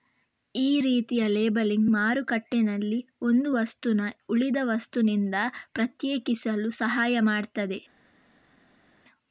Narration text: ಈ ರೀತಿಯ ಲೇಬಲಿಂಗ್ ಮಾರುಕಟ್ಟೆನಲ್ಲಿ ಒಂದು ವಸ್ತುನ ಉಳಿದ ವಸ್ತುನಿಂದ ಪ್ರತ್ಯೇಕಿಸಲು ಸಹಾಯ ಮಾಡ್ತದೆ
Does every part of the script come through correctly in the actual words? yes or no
yes